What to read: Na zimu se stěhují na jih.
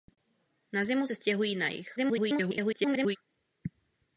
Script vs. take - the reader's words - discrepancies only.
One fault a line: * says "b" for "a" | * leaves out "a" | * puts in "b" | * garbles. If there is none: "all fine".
* garbles